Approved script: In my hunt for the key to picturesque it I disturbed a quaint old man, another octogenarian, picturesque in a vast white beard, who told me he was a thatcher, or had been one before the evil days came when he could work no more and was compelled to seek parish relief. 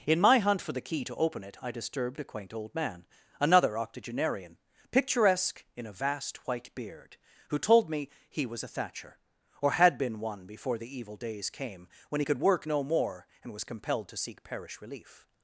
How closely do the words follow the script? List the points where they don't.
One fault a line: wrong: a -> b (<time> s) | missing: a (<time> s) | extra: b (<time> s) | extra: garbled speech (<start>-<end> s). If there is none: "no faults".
wrong: picturesque -> open (1.1 s)